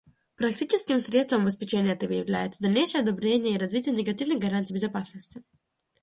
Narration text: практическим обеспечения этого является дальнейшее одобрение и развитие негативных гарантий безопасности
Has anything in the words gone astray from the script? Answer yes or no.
yes